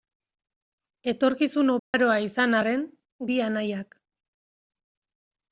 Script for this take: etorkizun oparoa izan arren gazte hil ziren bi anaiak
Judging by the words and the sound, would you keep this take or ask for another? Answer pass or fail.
fail